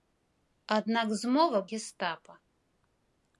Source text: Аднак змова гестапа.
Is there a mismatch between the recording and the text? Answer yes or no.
no